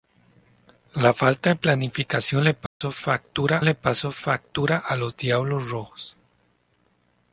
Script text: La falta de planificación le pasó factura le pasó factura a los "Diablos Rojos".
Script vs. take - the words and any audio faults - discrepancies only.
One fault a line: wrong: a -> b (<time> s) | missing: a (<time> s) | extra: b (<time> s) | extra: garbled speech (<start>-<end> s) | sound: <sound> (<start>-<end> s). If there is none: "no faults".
sound: dropout (2.7-2.8 s)